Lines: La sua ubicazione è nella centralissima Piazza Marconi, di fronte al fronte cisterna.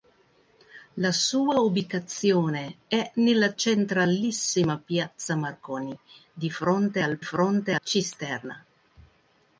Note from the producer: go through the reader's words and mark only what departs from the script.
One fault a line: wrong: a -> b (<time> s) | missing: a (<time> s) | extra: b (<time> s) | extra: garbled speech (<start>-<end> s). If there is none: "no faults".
no faults